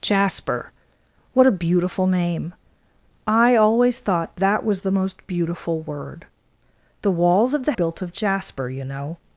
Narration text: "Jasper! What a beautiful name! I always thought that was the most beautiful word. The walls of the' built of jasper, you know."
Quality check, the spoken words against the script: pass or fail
pass